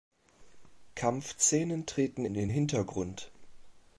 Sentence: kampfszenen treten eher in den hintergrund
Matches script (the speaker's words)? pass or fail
fail